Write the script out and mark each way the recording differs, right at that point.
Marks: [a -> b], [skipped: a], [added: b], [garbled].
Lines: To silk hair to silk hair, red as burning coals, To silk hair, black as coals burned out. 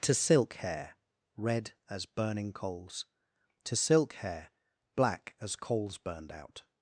To silk hair [skipped: to silk hair,] red as burning coals, To silk hair, black as coals burned out.